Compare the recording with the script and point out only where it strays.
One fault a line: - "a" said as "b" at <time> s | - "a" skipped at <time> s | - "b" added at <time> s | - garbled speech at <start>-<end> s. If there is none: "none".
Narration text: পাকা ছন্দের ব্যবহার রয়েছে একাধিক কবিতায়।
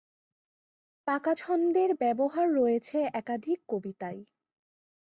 none